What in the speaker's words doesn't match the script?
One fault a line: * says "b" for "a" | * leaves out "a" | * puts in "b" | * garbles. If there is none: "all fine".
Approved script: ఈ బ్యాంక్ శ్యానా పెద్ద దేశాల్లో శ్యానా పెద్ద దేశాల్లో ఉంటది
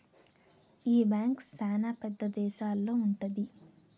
* leaves out "శ్యానా పెద్ద దేశాల్లో"